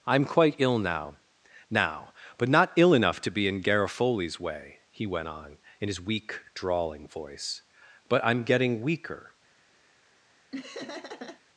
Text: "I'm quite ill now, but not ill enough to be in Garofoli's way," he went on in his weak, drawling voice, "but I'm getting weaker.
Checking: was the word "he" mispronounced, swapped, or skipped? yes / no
no